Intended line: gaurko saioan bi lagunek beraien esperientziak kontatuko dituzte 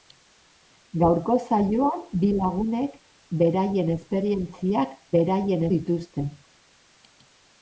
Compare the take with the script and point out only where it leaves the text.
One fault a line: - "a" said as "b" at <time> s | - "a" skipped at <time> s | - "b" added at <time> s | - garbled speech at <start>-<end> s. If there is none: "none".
- "kontatuko" said as "beraien" at 5.2 s